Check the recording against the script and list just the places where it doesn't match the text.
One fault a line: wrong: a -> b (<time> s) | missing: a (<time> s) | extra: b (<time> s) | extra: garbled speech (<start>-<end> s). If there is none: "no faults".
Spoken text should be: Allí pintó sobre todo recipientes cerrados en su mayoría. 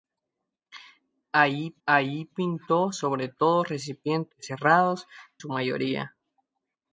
extra: allí (1.8 s)
missing: en (5.1 s)